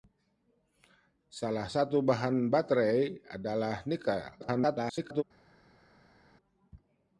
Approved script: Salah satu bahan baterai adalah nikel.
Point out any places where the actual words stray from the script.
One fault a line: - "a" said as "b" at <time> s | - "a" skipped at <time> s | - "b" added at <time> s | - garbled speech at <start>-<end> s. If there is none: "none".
- garbled speech at 4.4-5.2 s